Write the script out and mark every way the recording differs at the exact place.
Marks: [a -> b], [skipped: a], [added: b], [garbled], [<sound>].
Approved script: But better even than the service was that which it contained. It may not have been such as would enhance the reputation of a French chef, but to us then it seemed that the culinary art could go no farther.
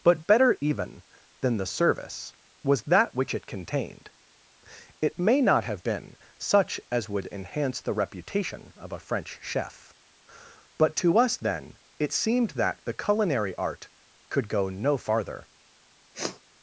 But better even than the service was that which it contained. It may not have been such as would enhance the reputation of a French chef, but to us then it seemed that the culinary art could go no farther. [sniff]